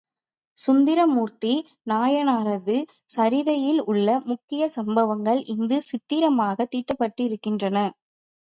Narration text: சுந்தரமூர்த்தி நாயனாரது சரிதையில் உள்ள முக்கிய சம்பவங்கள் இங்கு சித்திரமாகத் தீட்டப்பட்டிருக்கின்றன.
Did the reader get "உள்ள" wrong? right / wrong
right